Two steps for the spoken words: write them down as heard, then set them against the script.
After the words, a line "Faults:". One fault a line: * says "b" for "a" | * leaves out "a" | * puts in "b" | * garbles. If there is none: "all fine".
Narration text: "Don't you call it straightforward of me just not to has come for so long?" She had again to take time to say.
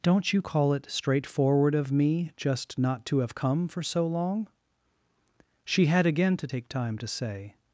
"Don't you call it straightforward of me just not to have come for so long?" She had again to take time to say.
Faults:
* says "have" for "has"